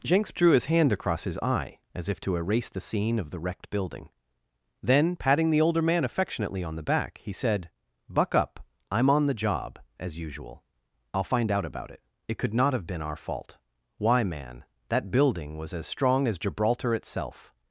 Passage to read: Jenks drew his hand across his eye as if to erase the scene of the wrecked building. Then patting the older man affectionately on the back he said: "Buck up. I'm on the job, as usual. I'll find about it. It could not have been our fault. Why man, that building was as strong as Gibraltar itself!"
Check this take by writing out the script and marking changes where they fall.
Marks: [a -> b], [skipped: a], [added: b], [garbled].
Jenks drew his hand across his eye as if to erase the scene of the wrecked building. Then patting the older man affectionately on the back he said: "Buck up. I'm on the job, as usual. I'll find [added: out] about it. It could not have been our fault. Why man, that building was as strong as Gibraltar itself!"